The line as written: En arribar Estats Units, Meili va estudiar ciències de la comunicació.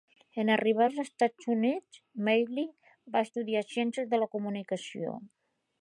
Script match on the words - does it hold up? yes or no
no